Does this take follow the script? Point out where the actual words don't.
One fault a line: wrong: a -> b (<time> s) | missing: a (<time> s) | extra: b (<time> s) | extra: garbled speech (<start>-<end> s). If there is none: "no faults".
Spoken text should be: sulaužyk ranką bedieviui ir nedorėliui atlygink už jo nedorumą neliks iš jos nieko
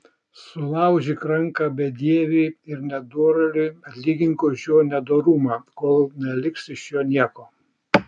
extra: kol (5.8 s)
wrong: jos -> jo (7.0 s)